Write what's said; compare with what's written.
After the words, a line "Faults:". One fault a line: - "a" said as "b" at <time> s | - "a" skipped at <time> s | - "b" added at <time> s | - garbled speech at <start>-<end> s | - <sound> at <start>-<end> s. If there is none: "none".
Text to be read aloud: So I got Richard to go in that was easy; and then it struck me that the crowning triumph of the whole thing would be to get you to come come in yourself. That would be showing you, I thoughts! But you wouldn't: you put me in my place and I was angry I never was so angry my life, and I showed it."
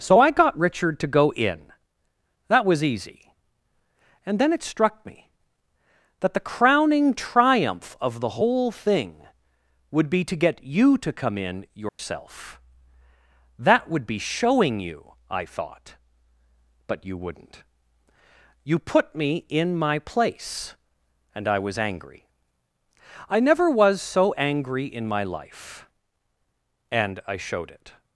So I got Richard to go in that was easy; and then it struck me that the crowning triumph of the whole thing would be to get you to come in yourself. That would be showing you, I thought! But you wouldn't: you put me in my place and I was angry I never was so angry in my life, and I showed it."
Faults:
- "come" skipped at 11.4 s
- dropout at 11.9-12.0 s
- "thoughts" said as "thought" at 15.4 s
- "in" added at 24.9 s